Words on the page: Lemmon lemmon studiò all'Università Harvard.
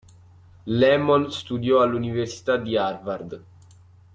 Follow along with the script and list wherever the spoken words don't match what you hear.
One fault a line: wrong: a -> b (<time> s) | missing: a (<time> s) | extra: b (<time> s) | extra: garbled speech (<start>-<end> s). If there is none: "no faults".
missing: lemmon (1.3 s)
extra: di (2.6 s)